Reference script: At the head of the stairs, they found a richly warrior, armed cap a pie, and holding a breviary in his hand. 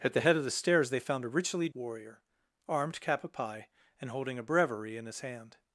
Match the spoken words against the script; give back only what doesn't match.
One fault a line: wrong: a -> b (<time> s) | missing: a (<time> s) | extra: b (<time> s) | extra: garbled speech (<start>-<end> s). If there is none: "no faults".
no faults